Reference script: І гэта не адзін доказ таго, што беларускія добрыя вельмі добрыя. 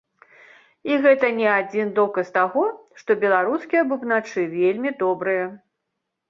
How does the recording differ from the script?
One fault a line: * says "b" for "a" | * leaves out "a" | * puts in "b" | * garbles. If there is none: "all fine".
* says "бубначы" for "добрыя"